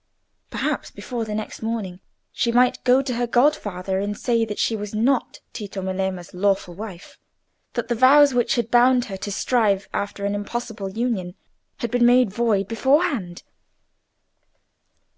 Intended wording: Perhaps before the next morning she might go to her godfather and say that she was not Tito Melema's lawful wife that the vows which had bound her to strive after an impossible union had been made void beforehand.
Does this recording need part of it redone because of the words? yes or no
no